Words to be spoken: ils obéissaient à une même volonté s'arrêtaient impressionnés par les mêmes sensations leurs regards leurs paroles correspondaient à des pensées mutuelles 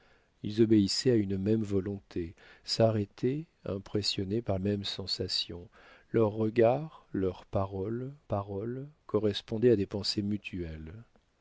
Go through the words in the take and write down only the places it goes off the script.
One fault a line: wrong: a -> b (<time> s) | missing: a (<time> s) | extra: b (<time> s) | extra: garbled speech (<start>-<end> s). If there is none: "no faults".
missing: les (4.6 s)
extra: paroles (8.2 s)